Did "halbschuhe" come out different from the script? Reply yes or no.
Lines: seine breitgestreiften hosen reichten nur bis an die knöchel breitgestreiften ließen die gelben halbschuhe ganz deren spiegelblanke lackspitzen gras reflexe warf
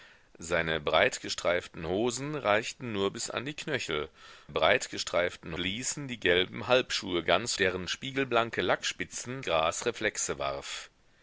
no